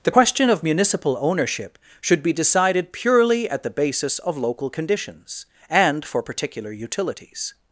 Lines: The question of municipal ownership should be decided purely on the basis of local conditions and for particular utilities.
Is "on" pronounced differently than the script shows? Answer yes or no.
yes